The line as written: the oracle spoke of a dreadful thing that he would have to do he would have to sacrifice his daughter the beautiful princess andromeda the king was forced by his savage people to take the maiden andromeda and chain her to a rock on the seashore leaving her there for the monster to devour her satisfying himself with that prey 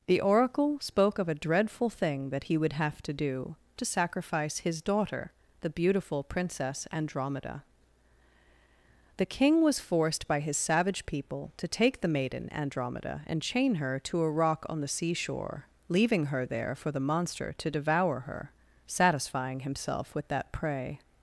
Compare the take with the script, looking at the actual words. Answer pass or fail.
fail